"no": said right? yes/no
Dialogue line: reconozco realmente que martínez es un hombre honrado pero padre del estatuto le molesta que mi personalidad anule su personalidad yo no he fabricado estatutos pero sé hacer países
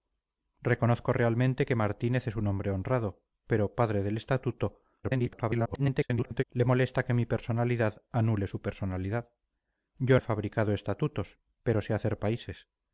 no